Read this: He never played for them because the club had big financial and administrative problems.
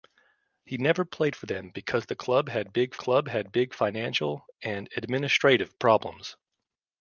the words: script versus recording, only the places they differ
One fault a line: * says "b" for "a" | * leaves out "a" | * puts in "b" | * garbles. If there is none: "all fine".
* puts in "club had big"